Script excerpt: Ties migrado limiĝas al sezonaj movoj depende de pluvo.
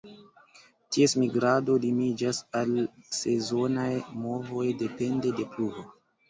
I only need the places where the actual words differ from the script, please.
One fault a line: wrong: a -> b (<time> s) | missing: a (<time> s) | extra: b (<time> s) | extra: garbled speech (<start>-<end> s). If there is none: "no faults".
no faults